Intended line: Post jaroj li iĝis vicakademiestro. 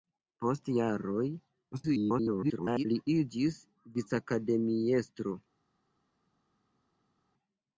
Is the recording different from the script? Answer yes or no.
yes